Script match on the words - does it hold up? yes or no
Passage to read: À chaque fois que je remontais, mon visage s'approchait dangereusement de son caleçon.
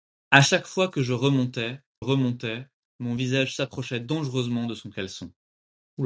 no